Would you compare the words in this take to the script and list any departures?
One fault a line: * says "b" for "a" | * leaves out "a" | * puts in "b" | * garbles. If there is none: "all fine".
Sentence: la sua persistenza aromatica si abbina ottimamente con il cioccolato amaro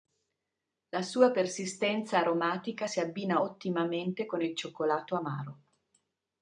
all fine